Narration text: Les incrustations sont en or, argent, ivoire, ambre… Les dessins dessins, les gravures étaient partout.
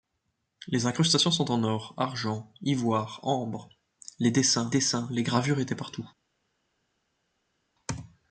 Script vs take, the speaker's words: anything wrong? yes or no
no